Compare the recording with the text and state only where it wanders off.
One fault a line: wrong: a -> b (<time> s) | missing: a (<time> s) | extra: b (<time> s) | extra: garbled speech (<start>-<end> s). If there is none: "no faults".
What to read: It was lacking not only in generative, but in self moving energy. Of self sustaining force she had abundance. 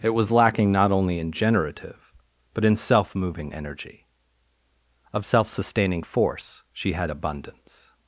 no faults